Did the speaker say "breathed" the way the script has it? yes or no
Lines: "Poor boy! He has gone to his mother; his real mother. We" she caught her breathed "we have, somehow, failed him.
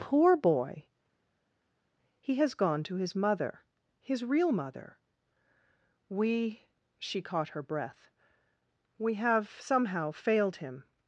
no